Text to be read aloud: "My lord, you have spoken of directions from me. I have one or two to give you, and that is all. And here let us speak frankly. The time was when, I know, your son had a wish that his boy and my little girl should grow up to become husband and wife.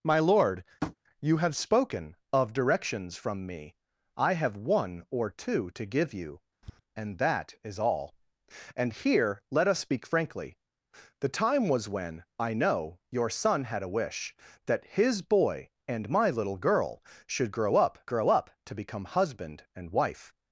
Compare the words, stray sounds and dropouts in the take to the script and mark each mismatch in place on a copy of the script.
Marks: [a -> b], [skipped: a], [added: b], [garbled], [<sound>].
"My lord, [tap] you have spoken of directions from me. I have one or two to give you, [tap] and that is all. And here let us speak frankly. The time was when, I know, your son had a wish that his boy and my little girl should grow up [added: grow up] to become husband and wife.